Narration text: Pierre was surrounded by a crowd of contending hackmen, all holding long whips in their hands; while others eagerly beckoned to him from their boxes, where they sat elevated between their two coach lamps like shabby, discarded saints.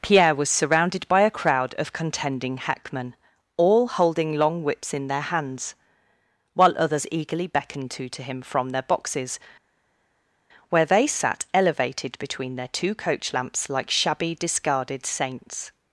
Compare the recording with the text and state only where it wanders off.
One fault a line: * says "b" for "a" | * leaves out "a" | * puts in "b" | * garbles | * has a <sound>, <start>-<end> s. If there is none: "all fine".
* puts in "to"